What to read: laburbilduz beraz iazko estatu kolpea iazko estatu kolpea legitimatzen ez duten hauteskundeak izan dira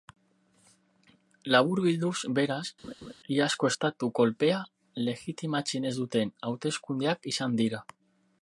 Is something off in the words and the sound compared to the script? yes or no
yes